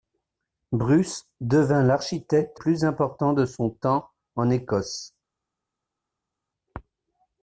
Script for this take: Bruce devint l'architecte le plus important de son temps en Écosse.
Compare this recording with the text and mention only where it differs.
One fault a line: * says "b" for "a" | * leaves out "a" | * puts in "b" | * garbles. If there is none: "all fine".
* leaves out "le"